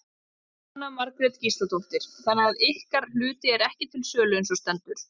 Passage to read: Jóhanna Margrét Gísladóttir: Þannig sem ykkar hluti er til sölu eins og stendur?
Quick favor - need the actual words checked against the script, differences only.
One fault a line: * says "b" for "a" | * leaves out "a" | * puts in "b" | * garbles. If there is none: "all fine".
* says "að" for "sem"
* puts in "ekki"